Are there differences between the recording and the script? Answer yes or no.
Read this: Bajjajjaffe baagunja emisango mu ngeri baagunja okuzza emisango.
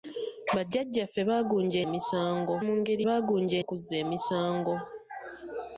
no